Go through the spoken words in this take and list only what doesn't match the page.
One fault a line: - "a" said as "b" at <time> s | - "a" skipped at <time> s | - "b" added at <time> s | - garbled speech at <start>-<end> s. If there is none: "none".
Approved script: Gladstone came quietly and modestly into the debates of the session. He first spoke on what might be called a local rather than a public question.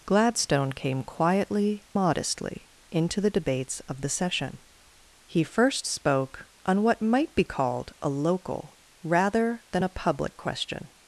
- "and" skipped at 1.8 s